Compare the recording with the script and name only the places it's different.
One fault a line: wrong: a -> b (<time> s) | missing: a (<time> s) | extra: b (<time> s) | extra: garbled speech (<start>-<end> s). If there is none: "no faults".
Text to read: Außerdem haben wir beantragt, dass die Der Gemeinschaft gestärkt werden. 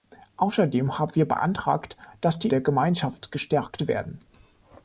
no faults